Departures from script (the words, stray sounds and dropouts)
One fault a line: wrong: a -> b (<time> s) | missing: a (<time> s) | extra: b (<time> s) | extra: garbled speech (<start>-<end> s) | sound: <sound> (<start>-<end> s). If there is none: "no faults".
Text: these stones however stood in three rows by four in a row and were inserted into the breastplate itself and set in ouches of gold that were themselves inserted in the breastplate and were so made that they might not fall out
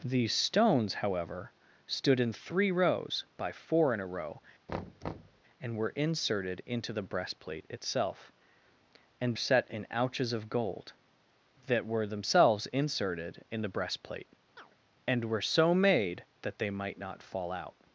sound: thud (4.7-5.4 s)
sound: chirp (14.6-14.8 s)